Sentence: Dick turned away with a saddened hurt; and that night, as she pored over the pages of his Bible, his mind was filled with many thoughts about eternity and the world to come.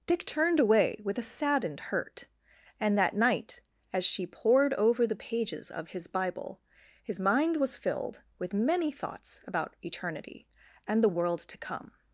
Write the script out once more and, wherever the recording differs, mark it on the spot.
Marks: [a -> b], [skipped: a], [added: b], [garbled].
Dick turned away with a saddened hurt; and that night, as she pored over the pages of his Bible, his mind was filled with many thoughts about eternity and the world to come.